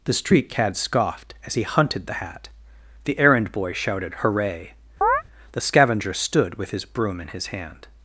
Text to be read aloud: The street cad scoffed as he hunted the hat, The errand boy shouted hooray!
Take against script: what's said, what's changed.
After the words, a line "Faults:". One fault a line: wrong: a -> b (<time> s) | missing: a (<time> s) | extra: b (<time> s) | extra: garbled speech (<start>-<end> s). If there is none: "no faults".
The street cad scoffed as he hunted the hat, The errand boy shouted hooray! The scavenger stood with his broom in his hand
Faults:
extra: The scavenger stood with his broom in his hand (5.5 s)